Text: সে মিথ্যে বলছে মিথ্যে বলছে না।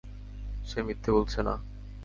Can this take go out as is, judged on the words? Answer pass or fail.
fail